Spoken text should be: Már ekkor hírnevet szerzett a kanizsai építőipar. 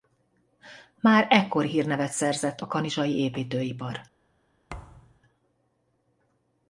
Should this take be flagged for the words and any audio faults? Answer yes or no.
yes